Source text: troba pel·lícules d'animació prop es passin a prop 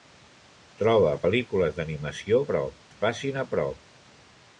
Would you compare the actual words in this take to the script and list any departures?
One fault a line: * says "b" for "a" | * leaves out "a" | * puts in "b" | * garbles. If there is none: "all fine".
all fine